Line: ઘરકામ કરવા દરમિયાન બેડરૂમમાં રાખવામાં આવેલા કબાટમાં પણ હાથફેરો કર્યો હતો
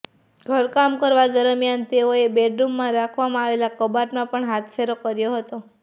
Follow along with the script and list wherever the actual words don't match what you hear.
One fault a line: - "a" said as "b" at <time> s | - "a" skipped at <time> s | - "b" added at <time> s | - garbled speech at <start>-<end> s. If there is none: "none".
- "તેઓએ" added at 1.9 s